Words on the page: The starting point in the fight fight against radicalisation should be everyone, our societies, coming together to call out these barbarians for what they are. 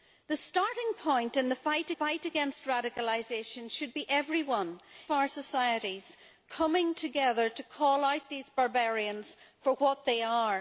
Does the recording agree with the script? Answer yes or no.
yes